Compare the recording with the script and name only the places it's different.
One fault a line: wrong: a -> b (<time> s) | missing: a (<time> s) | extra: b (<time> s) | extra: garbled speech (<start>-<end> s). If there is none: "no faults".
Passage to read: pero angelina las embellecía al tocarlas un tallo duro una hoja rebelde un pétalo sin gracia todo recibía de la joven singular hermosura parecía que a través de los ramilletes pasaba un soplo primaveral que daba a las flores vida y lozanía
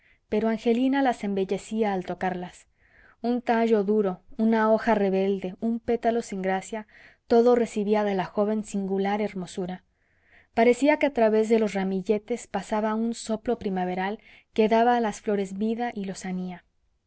no faults